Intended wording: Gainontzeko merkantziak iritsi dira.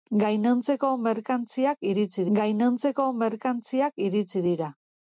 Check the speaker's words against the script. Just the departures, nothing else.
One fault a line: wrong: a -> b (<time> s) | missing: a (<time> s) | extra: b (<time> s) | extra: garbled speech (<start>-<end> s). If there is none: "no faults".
extra: gainontzeko merkantziak iritsi (2.4 s)